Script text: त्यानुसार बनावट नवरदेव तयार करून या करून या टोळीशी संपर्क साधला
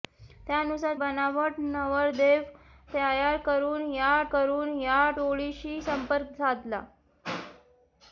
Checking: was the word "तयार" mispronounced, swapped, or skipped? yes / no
no